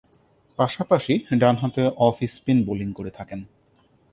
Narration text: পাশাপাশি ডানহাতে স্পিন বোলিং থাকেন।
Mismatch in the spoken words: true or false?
true